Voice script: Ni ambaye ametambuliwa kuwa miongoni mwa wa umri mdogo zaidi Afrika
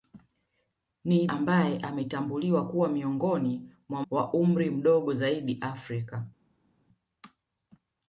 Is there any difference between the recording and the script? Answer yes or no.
no